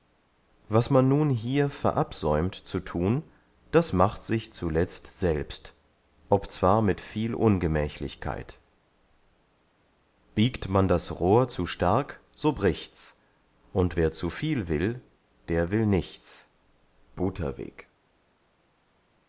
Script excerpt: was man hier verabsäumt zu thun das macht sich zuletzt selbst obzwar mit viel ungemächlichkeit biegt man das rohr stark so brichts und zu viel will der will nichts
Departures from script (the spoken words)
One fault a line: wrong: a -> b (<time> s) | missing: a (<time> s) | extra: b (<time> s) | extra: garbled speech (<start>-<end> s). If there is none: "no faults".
extra: nun (1.1 s)
extra: zu (11.5 s)
extra: wer (14.0 s)